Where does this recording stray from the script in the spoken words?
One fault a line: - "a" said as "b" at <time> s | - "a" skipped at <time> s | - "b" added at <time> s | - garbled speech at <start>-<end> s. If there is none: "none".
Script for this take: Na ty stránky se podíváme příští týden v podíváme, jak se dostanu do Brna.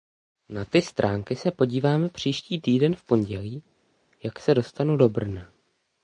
- "podíváme" said as "pondělí" at 3.0 s